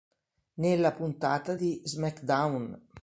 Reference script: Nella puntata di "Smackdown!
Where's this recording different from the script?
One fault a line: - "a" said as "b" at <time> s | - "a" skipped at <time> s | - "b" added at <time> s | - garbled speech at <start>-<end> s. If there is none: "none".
none